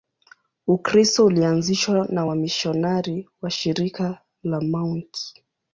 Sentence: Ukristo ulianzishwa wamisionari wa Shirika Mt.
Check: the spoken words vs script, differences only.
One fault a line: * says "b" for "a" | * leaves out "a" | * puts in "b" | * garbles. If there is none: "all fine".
* puts in "na"
* puts in "la"